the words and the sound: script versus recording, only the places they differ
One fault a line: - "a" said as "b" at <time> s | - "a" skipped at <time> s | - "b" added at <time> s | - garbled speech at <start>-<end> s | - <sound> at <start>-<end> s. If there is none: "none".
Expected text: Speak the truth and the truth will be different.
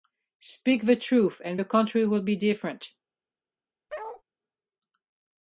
- "truth" said as "country" at 1.6 s
- bark at 3.9-4.2 s